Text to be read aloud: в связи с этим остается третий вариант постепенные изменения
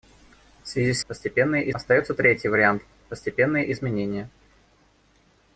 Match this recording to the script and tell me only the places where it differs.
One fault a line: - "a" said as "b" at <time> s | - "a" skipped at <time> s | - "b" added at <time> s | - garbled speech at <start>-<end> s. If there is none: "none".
- "этим" said as "постепенные" at 1.1 s